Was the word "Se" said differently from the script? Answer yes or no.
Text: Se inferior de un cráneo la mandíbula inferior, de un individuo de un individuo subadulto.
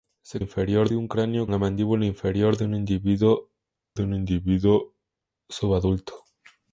no